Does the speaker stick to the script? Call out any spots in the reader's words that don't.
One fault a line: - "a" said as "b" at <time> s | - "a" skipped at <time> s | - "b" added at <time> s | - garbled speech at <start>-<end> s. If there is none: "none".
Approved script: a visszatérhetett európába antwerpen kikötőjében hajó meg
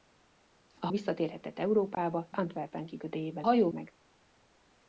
none